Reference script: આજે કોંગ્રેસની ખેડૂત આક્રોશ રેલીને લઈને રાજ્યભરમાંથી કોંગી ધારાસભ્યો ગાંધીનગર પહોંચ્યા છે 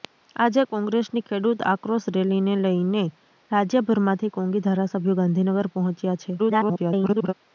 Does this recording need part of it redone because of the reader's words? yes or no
yes